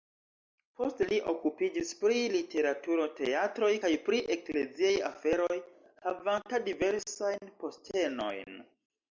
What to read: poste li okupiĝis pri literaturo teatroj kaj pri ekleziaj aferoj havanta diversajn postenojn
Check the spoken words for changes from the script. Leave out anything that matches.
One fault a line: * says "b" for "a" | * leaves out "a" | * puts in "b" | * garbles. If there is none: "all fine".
all fine